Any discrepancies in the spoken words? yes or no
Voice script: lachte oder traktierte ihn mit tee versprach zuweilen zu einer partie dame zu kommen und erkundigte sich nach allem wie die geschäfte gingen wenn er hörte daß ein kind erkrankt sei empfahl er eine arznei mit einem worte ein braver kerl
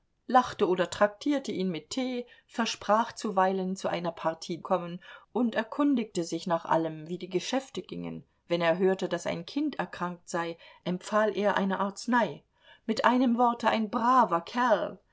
yes